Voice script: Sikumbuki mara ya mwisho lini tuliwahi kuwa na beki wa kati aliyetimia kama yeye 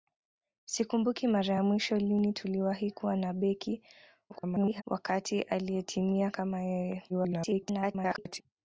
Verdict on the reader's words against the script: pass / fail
fail